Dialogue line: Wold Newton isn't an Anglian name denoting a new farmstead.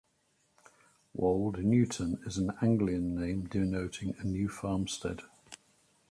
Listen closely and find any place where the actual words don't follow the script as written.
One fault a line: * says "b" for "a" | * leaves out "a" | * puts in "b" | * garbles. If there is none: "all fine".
* says "is" for "isn't"